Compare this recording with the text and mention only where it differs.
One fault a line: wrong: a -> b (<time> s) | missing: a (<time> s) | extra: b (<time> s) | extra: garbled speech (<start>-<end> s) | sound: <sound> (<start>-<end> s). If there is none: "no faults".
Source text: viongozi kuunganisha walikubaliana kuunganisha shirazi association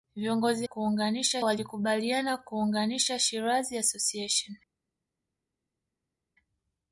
no faults